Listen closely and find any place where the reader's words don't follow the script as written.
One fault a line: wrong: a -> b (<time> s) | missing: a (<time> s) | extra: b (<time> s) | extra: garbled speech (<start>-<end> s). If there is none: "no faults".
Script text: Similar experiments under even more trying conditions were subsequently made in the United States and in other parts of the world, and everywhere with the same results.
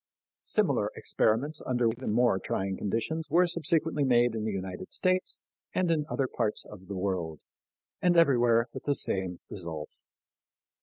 no faults